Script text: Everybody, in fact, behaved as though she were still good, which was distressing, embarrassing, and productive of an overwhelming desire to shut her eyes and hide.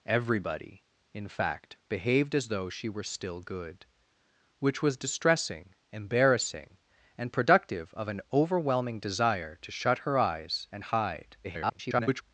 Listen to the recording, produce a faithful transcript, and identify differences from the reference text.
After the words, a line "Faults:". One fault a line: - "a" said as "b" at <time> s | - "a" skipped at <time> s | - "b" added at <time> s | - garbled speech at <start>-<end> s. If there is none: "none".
Everybody, in fact, behaved as though she were still good, which was distressing, embarrassing, and productive of an overwhelming desire to shut her eyes and hide. [garbled]
Faults:
- garbled speech at 11.4-12.2 s